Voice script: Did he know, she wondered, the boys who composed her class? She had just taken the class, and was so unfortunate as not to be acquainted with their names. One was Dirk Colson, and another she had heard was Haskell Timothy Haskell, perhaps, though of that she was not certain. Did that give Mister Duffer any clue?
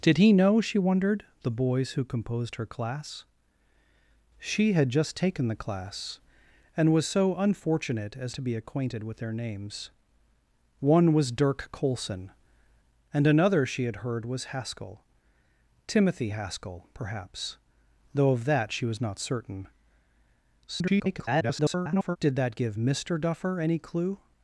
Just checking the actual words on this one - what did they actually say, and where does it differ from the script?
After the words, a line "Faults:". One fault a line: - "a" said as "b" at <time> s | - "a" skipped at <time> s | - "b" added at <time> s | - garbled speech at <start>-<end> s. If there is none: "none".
Did he know, she wondered, the boys who composed her class? She had just taken the class, and was so unfortunate as to be acquainted with their names. One was Dirk Colson, and another she had heard was Haskell Timothy Haskell, perhaps, though of that she was not certain. [garbled] Did that give Mister Duffer any clue?
Faults:
- "not" skipped at 8.3 s
- garbled speech at 20.7-22.2 s